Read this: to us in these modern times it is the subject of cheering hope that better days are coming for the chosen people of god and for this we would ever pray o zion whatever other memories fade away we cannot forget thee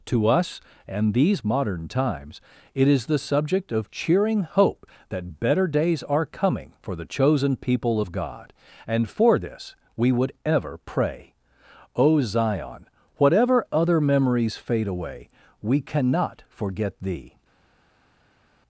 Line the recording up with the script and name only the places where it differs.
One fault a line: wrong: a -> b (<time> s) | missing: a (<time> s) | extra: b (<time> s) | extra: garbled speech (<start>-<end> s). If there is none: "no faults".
wrong: in -> and (0.9 s)